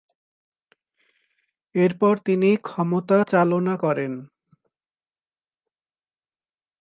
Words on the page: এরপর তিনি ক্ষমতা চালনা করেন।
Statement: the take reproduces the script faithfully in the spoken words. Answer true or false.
true